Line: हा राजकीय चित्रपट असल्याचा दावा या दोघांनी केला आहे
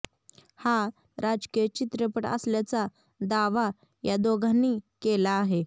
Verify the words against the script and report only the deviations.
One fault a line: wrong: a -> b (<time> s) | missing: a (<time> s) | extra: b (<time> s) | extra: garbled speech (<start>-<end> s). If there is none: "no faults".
no faults